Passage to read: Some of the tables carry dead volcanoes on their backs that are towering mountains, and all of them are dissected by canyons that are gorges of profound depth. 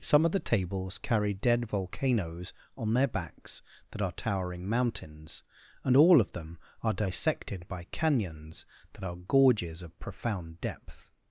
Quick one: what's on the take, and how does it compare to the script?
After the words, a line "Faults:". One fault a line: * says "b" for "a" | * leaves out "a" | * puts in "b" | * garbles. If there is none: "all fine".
Some of the tables carry dead volcanoes on their backs that are towering mountains, and all of them are dissected by canyons that are gorges of profound depth.
Faults:
all fine